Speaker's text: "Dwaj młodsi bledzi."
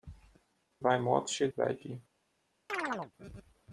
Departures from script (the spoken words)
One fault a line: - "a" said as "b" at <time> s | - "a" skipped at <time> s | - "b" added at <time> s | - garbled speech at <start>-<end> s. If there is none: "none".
none